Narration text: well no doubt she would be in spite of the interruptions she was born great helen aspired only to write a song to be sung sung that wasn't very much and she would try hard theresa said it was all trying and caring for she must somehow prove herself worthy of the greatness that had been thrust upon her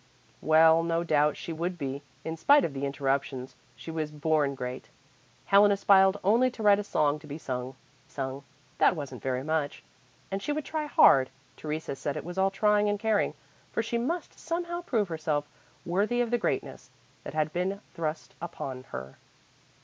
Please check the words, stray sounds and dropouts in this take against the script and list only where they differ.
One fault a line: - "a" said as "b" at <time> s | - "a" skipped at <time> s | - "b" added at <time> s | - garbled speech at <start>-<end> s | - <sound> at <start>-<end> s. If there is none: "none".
none